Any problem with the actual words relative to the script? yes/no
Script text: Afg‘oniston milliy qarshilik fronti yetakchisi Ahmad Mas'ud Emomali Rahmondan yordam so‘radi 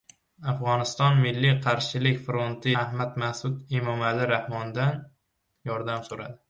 yes